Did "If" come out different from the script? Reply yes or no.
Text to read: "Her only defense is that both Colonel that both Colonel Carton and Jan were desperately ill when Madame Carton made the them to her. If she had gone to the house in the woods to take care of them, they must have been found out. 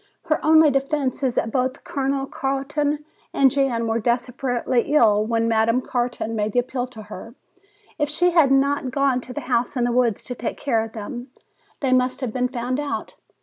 no